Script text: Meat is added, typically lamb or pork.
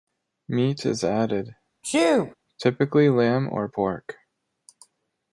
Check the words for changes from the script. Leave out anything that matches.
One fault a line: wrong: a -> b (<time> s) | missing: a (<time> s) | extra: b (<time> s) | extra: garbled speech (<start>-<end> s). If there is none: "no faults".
no faults